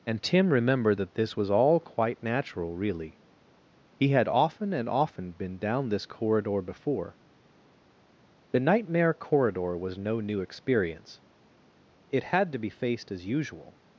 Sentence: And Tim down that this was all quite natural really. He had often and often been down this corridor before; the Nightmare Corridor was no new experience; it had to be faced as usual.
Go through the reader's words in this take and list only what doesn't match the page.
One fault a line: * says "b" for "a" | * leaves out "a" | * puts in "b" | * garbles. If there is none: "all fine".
* says "remembered" for "down"